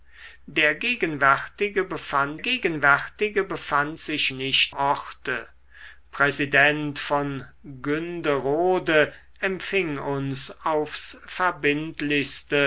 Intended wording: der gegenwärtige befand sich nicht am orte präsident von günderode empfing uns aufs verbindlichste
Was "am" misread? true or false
true